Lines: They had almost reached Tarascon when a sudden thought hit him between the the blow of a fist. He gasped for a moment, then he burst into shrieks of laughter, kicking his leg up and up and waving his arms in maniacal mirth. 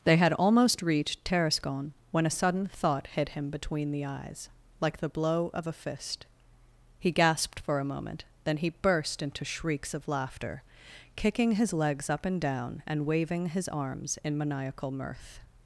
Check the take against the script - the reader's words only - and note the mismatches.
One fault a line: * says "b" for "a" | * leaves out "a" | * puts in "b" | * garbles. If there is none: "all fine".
* puts in "eyes like"
* says "legs" for "leg"
* says "down" for "up"